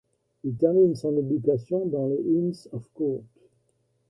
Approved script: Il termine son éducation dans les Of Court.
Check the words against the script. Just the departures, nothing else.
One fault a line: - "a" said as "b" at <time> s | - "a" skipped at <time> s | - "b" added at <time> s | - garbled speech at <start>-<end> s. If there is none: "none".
- "Inns" added at 2.2 s